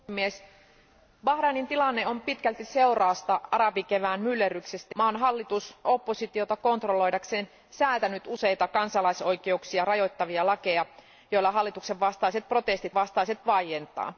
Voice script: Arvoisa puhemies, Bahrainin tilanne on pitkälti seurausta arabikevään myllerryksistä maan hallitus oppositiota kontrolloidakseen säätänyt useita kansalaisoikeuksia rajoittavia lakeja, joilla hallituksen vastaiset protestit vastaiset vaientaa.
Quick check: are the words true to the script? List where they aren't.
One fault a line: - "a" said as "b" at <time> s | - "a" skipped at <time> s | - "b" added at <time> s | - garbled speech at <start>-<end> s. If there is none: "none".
none